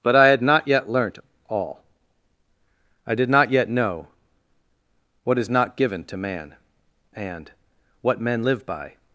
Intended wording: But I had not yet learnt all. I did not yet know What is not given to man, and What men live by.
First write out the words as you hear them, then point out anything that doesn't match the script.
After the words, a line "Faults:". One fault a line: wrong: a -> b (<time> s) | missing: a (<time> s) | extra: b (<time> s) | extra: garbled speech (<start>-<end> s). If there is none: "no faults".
But I had not yet learnt all. I did not yet know What is not given to man, and What men live by.
Faults:
no faults